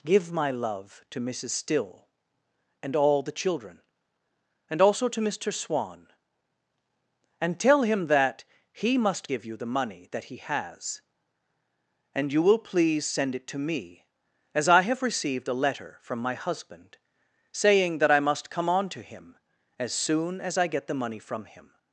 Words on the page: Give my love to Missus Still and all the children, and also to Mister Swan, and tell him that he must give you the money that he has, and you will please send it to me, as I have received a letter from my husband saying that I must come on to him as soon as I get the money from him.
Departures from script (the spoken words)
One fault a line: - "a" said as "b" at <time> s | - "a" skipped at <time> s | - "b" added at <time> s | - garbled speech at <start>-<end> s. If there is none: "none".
none